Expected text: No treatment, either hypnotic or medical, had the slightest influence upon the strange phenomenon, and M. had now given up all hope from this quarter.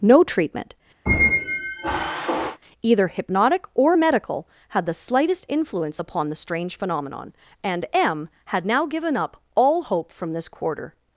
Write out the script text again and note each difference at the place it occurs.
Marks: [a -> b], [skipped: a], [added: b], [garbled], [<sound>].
No treatment, [squeak] either hypnotic or medical, had the slightest influence upon the strange phenomenon, and M. had now given up all hope from this quarter.